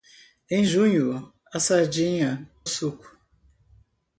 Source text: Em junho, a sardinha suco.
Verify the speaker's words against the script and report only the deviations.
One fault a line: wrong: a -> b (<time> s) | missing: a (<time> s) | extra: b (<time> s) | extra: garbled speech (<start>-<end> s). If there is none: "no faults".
no faults